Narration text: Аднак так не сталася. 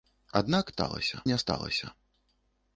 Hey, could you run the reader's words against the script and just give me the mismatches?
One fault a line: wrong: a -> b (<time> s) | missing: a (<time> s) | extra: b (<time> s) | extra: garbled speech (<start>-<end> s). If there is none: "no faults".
wrong: так -> сталася (0.7 s)